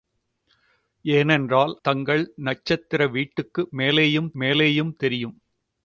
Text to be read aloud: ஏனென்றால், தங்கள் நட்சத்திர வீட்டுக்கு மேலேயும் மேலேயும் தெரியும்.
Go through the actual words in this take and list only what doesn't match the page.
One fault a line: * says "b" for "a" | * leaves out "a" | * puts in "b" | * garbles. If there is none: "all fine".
all fine